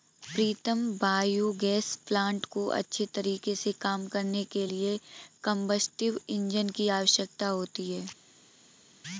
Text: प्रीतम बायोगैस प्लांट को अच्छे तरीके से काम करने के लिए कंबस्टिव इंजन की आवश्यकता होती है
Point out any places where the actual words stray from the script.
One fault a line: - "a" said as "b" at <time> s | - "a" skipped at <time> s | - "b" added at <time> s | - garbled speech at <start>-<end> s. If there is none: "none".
none